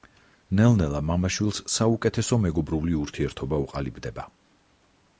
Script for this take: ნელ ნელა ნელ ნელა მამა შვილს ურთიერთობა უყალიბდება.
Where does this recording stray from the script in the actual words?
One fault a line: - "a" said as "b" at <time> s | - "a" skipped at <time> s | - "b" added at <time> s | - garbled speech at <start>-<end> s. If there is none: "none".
- "ნელ ნელა მამა შვილს" said as "მამა შვილს საუკეთესო მეგობრული" at 1.1 s